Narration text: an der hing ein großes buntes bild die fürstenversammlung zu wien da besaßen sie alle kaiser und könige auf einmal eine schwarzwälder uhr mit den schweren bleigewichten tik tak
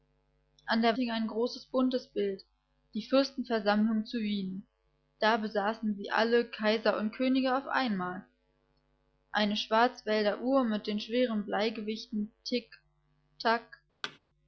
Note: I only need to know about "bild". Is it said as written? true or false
true